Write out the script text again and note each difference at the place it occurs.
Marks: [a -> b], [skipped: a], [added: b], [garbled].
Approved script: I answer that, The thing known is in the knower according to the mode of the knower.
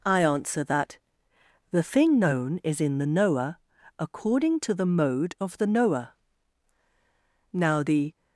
I answer that, The thing known is in the knower according to the mode of the knower. [added: Now the]